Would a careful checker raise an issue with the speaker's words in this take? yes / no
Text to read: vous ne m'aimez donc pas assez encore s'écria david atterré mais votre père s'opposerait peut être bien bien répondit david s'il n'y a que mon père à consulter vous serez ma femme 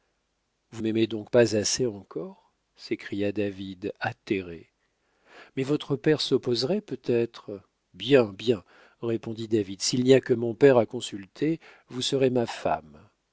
yes